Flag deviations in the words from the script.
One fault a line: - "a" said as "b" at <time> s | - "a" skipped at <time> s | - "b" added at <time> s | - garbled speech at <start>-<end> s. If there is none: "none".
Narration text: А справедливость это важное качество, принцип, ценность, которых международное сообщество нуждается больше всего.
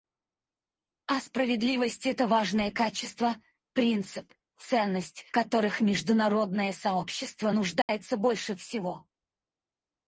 none